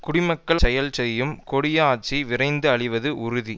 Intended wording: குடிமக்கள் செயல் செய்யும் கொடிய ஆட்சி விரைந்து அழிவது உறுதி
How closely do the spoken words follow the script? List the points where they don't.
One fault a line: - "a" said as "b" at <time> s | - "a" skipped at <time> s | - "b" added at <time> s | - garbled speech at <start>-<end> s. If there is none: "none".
none